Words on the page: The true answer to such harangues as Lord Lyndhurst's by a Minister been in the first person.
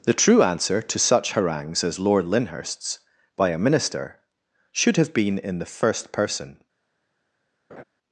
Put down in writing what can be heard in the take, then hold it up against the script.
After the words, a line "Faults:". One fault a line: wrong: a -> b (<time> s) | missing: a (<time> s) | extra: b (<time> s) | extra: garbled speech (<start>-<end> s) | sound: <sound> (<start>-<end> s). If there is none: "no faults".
The true answer to such harangues as Lord Lyndhurst's by a Minister should have been in the first person.
Faults:
extra: should have (4.7 s)
sound: laugh (7.7-7.8 s)